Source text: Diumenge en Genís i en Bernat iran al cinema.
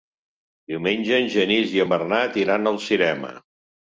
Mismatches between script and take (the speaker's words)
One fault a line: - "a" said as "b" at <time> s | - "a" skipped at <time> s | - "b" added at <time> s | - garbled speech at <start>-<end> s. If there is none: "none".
none